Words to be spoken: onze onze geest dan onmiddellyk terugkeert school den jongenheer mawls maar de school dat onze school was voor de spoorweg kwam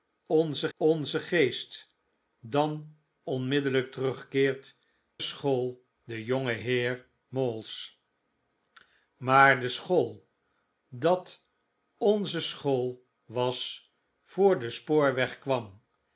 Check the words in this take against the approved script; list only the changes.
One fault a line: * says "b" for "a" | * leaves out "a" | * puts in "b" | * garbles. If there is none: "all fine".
all fine